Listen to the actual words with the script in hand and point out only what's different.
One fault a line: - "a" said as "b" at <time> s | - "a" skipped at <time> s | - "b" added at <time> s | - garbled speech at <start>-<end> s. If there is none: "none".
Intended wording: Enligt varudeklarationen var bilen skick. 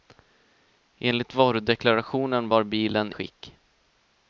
none